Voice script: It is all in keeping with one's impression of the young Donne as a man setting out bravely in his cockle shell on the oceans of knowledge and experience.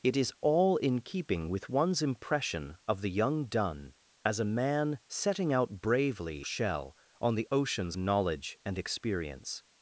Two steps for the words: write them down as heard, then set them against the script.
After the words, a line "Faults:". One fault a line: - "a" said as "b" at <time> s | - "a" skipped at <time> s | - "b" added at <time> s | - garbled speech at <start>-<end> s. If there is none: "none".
It is all in keeping with one's impression of the young Donne as a man setting out bravely shell on the oceans knowledge and experience.
Faults:
- "in his cockle" skipped at 6.4 s
- "of" skipped at 7.9 s